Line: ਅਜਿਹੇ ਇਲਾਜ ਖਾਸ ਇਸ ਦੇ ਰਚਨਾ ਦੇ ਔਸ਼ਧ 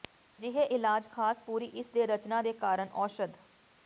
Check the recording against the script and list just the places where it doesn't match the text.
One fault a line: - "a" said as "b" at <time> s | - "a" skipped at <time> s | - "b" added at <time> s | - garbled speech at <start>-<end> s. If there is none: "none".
- "ਪੂਰੀ" added at 1.4 s
- "ਕਾਰਨ" added at 2.5 s